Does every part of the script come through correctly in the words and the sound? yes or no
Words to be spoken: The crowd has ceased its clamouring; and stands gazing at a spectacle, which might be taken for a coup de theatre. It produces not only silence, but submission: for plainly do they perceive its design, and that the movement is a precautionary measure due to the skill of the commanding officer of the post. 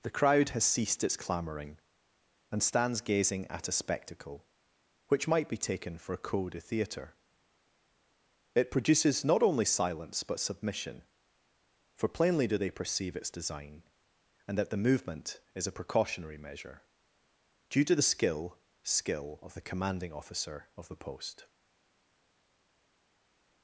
no